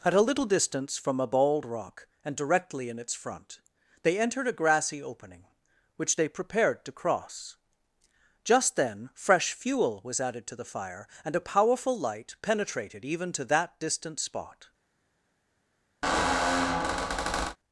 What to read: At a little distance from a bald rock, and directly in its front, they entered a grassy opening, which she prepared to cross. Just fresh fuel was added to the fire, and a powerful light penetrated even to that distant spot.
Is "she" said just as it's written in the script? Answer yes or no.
no